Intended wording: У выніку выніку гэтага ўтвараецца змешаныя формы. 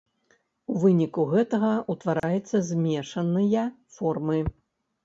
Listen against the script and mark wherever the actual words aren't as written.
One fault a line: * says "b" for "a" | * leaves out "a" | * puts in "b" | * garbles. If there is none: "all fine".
* leaves out "выніку"